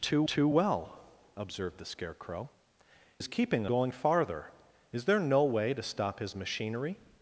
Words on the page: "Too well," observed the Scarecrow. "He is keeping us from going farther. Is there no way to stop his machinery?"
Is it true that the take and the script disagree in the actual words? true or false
true